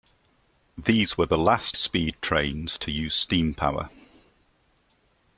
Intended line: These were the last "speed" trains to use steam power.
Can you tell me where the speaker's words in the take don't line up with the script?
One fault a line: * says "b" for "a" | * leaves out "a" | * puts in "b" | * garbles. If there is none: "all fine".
all fine